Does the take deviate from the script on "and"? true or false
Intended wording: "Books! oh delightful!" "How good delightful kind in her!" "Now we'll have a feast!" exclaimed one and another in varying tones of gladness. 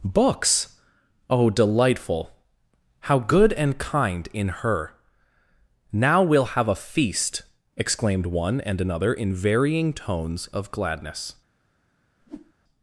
false